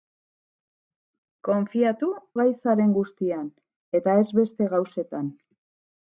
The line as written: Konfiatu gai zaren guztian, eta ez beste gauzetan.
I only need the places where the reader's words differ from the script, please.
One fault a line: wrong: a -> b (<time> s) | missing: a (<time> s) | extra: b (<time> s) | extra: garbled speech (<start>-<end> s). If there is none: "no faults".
no faults